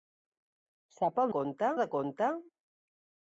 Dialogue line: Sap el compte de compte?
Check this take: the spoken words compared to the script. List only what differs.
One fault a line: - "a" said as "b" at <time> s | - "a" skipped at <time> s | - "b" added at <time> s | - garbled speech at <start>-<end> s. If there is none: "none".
none